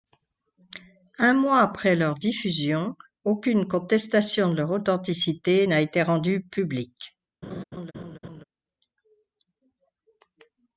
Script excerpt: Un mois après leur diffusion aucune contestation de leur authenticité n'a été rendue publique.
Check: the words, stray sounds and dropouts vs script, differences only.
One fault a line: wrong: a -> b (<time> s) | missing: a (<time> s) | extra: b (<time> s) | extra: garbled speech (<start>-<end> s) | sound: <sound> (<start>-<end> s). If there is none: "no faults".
sound: laugh (7.4-8.4 s)